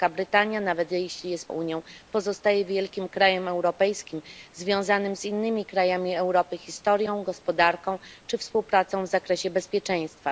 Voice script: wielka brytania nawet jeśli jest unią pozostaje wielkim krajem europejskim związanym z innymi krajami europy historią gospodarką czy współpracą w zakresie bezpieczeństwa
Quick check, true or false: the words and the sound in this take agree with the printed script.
true